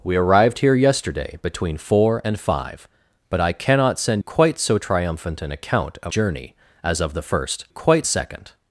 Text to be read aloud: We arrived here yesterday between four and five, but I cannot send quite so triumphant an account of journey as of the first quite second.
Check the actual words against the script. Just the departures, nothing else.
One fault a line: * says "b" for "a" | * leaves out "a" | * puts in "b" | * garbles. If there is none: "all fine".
all fine